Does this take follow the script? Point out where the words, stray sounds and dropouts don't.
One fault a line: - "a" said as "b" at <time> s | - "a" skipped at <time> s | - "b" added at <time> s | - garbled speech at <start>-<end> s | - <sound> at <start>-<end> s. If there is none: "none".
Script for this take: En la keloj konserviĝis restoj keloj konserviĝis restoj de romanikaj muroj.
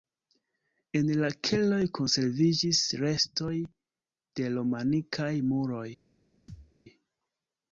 - "keloj konserviĝis restoj" skipped at 3.5 s
- thud at 6.5-6.7 s